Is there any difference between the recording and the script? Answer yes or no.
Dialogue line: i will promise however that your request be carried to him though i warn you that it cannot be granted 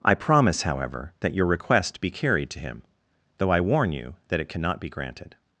yes